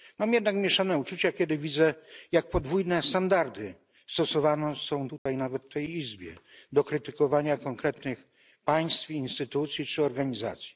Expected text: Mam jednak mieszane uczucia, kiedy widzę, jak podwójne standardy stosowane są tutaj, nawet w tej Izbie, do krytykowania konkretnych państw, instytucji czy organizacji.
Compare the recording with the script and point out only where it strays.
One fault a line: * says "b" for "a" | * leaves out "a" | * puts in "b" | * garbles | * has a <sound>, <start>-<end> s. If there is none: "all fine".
* has a dropout, 5.2-5.3 s